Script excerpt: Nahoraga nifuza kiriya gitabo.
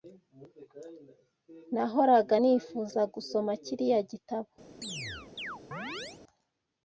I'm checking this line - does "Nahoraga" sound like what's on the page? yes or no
yes